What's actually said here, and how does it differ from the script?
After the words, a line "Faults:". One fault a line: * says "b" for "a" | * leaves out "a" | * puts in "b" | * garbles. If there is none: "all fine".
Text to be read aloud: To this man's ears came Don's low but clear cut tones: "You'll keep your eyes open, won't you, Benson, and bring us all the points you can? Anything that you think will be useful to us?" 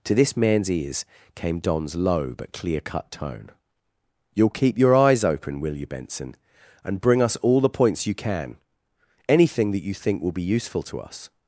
To this man's ears came Don's low but clear cut tone: "You'll keep your eyes open, will you, Benson, and bring us all the points you can? Anything that you think will be useful to us?"
Faults:
* says "tone" for "tones"
* says "will" for "won't"